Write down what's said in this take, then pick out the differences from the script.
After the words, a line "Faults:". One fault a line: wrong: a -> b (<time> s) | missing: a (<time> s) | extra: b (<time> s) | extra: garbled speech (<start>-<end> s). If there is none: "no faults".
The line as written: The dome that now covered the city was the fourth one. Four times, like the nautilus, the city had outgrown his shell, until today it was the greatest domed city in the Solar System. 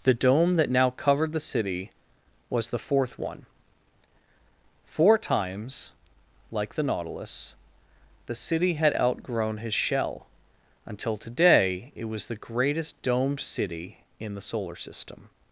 The dome that now covered the city was the fourth one. Four times, like the nautilus, the city had outgrown his shell, until today it was the greatest domed city in the Solar System.
Faults:
no faults